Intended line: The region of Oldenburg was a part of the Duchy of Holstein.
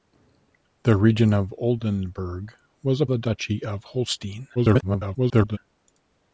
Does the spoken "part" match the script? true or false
false